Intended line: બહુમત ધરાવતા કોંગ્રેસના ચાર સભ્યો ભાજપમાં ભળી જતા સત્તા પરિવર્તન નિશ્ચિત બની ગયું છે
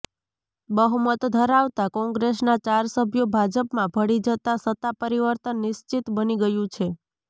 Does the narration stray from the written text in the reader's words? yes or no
no